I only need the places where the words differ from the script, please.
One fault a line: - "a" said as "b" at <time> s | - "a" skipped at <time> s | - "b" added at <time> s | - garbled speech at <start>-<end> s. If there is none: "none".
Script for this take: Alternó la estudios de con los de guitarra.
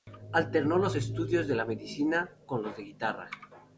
- "la" said as "los" at 0.8 s
- "medicina" added at 1.7 s